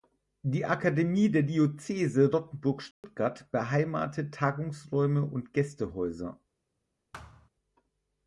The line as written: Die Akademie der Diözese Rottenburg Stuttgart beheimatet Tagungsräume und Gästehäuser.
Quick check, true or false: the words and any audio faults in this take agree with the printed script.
false